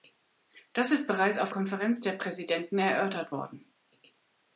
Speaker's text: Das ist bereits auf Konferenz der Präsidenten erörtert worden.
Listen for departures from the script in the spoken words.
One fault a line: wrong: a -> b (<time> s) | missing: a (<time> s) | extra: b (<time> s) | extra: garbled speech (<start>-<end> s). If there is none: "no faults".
no faults